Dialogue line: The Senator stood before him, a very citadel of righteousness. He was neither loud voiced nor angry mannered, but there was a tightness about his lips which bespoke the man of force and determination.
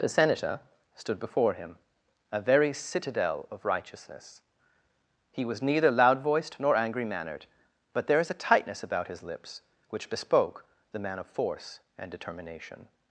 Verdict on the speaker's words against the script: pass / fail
fail